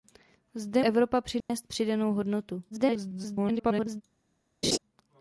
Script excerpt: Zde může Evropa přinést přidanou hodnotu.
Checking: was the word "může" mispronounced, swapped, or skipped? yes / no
yes